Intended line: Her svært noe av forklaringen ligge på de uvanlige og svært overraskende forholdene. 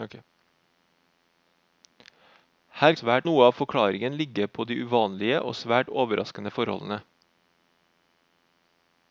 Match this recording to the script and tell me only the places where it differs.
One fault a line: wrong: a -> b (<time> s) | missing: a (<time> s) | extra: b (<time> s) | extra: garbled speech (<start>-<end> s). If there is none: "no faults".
no faults